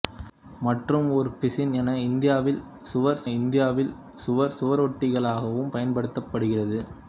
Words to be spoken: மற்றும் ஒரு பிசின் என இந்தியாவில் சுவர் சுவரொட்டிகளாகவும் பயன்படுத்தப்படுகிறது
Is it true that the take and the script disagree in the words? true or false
true